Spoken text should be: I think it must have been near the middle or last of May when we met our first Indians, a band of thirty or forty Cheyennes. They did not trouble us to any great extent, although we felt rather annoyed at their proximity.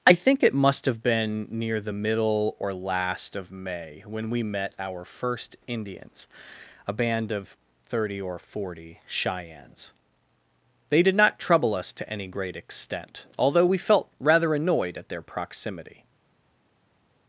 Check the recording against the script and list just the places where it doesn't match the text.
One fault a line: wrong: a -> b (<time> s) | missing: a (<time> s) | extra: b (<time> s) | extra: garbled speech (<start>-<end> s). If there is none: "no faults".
no faults